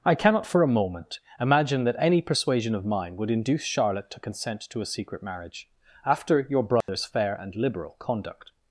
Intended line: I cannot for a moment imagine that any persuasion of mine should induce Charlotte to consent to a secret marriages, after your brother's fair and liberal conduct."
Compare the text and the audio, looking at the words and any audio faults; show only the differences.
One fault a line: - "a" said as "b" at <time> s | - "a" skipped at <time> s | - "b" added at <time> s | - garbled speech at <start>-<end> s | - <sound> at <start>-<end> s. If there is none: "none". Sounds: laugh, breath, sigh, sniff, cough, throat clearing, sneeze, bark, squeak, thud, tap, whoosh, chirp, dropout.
- "should" said as "would" at 3.2 s
- "marriages" said as "marriage" at 5.2 s
- dropout at 6.8-6.9 s